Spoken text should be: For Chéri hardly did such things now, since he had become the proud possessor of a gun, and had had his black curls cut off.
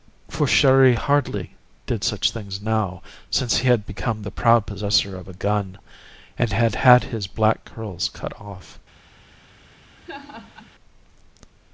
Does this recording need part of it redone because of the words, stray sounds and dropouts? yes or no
yes